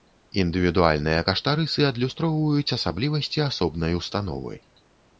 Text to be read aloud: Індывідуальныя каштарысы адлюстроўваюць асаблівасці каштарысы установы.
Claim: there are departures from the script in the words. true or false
true